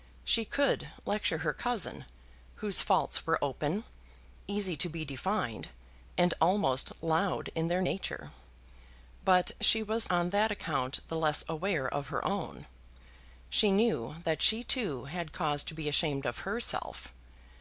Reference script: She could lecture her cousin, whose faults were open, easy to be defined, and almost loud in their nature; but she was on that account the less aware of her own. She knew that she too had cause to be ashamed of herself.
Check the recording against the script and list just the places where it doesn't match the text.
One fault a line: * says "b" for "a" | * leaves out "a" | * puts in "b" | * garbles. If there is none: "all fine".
all fine